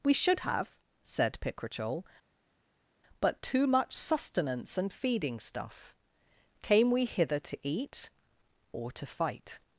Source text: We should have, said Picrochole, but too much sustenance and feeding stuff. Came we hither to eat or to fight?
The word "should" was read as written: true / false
true